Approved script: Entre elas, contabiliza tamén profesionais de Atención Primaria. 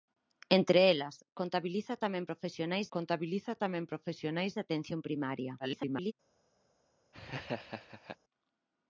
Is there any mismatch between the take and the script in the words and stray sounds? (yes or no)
yes